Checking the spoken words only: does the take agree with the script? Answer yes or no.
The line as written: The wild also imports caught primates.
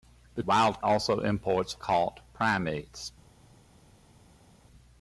yes